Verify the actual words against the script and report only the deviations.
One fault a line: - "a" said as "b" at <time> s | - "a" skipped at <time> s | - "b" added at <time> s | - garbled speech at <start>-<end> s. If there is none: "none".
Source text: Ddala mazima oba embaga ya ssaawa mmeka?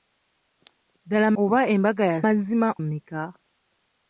- "mazima" skipped at 1.3 s
- "ssaawa" said as "mazima" at 2.2 s